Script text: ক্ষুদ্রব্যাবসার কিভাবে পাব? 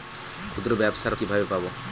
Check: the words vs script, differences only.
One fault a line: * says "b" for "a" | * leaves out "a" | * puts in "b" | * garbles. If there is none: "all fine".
all fine